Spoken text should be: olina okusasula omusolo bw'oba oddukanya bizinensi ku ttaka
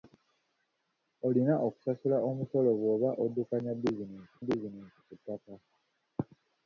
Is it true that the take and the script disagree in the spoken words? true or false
true